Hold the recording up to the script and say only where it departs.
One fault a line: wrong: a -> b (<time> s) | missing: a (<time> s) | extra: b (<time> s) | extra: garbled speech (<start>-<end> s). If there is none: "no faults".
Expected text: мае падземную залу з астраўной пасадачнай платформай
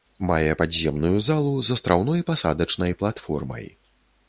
no faults